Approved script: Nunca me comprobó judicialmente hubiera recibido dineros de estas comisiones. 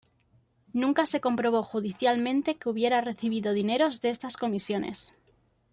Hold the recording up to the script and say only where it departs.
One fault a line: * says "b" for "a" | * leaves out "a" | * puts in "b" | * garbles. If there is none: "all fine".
* says "se" for "me"
* puts in "que"